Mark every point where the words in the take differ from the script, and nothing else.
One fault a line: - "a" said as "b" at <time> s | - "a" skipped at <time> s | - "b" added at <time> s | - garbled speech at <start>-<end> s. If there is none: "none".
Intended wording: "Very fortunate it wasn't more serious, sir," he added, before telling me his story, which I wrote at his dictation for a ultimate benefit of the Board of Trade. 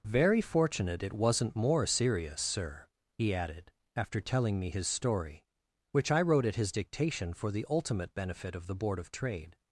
- "before" said as "after" at 4.0 s
- "a" said as "the" at 7.5 s